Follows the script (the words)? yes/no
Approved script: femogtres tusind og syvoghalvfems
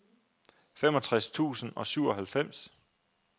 yes